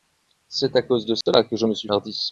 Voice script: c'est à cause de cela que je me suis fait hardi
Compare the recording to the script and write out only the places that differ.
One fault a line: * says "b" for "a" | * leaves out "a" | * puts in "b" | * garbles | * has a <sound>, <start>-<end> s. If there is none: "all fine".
* has a dropout, 1.2-1.3 s
* leaves out "fait"